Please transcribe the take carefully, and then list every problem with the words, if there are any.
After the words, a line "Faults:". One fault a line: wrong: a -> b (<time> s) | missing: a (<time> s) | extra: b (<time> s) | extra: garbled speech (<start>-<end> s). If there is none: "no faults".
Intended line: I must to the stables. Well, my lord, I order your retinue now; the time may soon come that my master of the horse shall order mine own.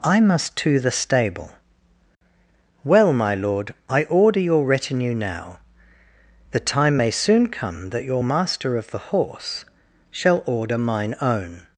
I must to the stable. Well, my lord, I order your retinue now; the time may soon come that your master of the horse shall order mine own.
Faults:
wrong: stables -> stable (0.9 s)
wrong: my -> your (8.0 s)